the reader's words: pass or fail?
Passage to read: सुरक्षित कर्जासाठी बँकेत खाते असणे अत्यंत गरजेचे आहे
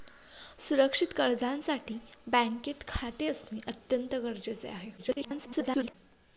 fail